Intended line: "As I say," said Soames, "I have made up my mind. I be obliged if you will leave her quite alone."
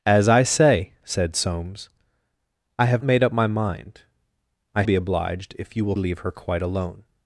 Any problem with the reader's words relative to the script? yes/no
no